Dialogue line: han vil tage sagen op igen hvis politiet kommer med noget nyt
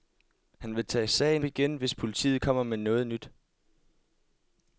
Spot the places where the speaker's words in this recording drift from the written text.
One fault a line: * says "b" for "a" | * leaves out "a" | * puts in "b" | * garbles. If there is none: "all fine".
* leaves out "op"